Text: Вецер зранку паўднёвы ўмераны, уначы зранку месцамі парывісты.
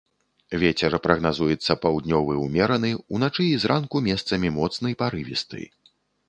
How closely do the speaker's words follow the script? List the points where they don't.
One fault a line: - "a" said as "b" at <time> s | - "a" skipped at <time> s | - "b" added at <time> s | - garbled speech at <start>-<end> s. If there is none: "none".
- "зранку" said as "прагназуецца" at 1.1 s
- "і" added at 3.5 s
- "моцны" added at 4.6 s